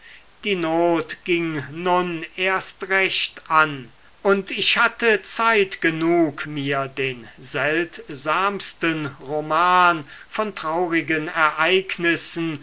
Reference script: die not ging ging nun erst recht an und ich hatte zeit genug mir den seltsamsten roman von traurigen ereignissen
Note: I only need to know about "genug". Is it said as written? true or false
true